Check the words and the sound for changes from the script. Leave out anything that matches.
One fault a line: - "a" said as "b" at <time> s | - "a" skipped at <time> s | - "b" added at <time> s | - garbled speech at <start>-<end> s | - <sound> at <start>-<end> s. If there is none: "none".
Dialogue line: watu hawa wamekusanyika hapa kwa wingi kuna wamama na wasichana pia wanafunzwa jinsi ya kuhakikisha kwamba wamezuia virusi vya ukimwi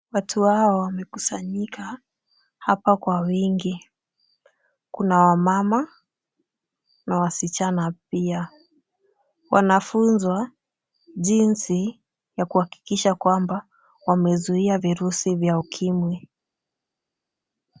none